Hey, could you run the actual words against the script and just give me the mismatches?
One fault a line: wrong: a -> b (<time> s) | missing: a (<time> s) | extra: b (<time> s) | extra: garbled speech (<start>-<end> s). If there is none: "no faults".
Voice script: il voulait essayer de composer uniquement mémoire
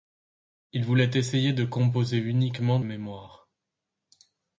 no faults